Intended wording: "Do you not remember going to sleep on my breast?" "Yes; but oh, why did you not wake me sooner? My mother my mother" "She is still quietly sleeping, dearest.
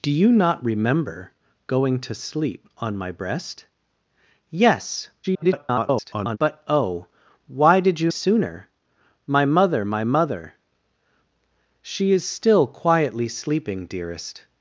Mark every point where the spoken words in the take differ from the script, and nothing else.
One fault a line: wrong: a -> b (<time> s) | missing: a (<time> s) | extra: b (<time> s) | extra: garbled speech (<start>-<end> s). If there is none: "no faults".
extra: garbled speech (5.2-6.4 s)
missing: not wake me (8.1 s)